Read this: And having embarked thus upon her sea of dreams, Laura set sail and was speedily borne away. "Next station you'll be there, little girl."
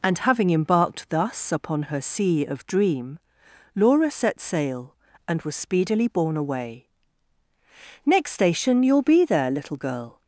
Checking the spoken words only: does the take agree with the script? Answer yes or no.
no